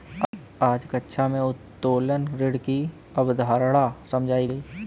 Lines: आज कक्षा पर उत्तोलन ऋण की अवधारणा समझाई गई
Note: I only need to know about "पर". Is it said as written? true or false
false